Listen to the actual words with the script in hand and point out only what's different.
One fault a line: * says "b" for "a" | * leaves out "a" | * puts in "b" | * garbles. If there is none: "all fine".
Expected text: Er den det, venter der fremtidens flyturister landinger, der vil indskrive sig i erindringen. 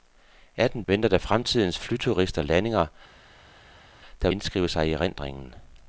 * leaves out "det"
* leaves out "vil"